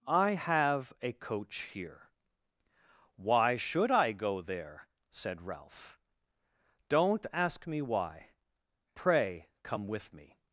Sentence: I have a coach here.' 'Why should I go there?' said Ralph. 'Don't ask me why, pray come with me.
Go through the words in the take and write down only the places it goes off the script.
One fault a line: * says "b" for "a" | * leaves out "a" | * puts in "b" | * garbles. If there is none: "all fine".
all fine